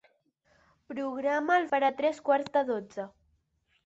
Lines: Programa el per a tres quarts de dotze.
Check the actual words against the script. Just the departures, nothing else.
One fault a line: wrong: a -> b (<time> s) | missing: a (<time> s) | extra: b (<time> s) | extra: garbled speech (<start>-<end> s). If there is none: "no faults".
no faults